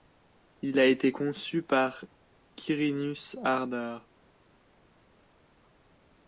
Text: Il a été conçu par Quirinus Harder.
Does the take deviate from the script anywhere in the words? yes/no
no